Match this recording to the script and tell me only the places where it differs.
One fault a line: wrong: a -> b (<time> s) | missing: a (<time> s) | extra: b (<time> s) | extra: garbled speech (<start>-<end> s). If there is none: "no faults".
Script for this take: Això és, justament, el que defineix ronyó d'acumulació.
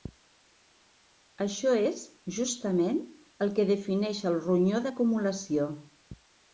extra: el (4.3 s)